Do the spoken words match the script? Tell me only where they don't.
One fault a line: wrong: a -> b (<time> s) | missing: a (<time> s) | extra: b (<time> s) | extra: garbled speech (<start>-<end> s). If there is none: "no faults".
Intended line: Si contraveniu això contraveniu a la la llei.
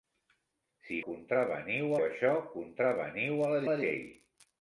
no faults